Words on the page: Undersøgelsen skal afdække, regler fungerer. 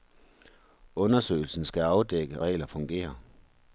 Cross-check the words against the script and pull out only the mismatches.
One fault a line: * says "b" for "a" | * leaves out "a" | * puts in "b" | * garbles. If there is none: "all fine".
all fine